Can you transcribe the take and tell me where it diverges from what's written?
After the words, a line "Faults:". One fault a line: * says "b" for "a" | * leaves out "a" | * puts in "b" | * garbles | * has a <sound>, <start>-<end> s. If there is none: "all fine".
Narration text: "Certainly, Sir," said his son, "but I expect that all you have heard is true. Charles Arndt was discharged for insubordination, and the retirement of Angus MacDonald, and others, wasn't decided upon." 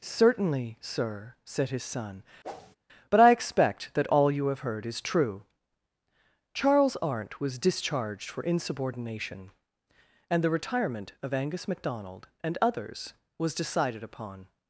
"Certainly, Sir," said his son, "but I expect that all you have heard is true. Charles Arndt was discharged for insubordination, and the retirement of Angus MacDonald, and others, was decided upon."
Faults:
* has a whoosh, 2.4-2.8 s
* says "was" for "wasn't"